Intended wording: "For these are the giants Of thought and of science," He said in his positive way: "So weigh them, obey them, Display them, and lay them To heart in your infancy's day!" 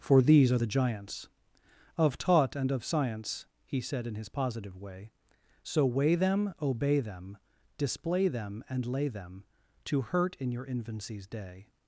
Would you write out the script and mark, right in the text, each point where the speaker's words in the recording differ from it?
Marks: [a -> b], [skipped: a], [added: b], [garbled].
"For these are the giants Of [thought -> taught] and of science," He said in his positive way: "So weigh them, obey them, Display them, and lay them To [heart -> hurt] in your infancy's day!"